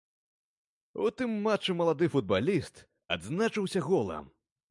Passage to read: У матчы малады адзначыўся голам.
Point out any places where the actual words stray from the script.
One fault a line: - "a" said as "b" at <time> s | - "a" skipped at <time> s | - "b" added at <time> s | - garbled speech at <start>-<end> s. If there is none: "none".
- "тым" added at 1.2 s
- "футбаліст" added at 2.1 s